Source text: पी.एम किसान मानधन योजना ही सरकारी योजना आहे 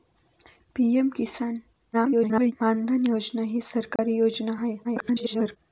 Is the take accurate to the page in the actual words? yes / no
no